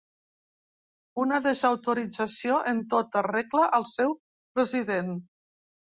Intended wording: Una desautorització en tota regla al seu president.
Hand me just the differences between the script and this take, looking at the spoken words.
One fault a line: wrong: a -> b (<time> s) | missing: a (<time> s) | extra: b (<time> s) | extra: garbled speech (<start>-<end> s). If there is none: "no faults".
no faults